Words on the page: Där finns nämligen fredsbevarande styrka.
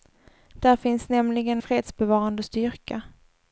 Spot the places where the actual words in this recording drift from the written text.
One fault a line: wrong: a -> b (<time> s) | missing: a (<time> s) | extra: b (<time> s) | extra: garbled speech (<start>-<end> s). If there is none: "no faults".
no faults